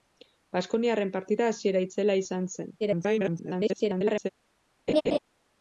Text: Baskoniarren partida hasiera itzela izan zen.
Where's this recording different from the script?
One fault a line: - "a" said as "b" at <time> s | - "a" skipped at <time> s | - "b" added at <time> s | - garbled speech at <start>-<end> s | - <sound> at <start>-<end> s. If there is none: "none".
- garbled speech at 2.8-4.3 s
- laugh at 4.9-5.2 s